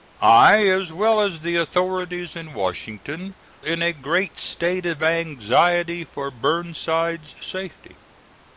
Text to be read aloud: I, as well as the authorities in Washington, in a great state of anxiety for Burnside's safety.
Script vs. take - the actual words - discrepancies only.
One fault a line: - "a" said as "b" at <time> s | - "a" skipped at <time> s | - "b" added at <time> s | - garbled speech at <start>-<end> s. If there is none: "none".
none